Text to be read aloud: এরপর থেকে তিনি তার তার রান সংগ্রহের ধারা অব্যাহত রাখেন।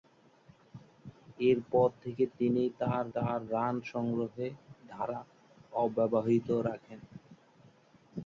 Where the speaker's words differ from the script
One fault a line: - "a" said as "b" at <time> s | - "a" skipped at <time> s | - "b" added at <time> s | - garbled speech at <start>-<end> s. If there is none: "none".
none